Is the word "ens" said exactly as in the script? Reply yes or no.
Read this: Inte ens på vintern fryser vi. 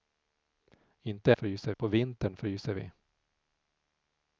no